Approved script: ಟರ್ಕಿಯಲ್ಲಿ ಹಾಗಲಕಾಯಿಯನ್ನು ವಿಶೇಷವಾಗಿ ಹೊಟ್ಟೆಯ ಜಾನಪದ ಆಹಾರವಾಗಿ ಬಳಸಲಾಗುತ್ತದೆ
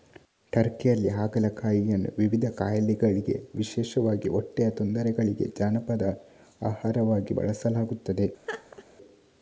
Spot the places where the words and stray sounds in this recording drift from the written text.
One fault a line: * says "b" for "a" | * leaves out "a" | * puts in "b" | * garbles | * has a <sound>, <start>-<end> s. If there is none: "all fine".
* puts in "ವಿವಿಧ ಕಾಯಿಲೆಗಳಿಗೆ"
* puts in "ತೊಂದರೆಗಳಿಗೆ"
* has a laugh, 8.5-8.8 s